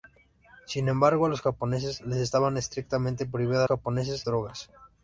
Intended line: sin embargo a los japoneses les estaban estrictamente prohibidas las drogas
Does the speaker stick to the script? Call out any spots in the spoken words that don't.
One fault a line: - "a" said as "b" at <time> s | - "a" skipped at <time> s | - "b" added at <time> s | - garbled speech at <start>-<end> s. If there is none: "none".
- "las" said as "japoneses" at 3.7 s